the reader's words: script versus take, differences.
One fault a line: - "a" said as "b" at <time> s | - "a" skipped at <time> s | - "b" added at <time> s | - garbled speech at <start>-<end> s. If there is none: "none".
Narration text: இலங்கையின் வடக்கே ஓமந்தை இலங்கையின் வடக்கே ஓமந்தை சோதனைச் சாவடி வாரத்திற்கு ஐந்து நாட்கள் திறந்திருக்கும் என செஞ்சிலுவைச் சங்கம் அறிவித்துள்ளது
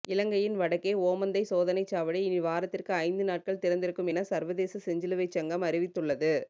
- "இலங்கையின் வடக்கே ஓமந்தை" skipped at 1.4 s
- "இனி" added at 2.2 s
- "சர்வதேச" added at 4.2 s